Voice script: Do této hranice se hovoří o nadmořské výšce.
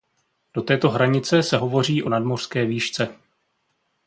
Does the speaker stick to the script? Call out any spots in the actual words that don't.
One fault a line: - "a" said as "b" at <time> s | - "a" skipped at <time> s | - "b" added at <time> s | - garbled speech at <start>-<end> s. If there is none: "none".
none